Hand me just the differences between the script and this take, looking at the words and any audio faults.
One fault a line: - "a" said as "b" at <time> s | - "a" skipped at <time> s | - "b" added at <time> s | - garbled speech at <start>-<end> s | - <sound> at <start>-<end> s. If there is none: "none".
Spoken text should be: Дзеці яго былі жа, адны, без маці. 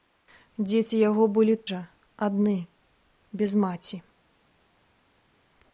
none